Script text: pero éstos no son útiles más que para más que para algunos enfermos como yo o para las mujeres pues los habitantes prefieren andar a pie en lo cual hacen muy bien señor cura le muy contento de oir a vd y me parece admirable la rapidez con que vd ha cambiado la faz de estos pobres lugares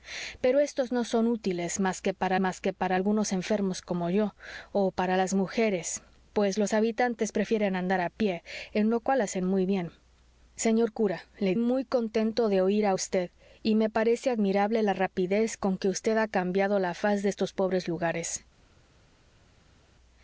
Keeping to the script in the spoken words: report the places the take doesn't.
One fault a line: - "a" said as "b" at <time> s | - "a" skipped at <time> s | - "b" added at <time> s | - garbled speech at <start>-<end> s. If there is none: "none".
none